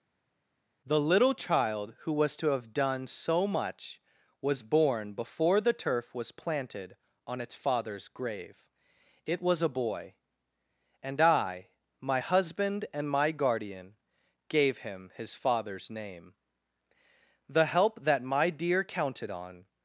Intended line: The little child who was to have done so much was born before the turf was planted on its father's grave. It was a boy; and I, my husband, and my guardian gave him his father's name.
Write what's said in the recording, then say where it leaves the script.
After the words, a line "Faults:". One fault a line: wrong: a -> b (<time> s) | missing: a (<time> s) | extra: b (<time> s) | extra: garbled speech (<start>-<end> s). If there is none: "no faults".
The little child who was to have done so much was born before the turf was planted on its father's grave. It was a boy; and I, my husband, and my guardian gave him his father's name. The help that my dear counted on
Faults:
extra: The help that my dear counted on (17.5 s)